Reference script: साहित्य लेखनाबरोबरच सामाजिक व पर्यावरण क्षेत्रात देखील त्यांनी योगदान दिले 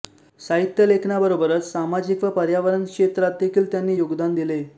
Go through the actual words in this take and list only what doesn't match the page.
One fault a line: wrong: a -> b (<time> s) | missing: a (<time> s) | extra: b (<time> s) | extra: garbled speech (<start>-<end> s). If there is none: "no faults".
no faults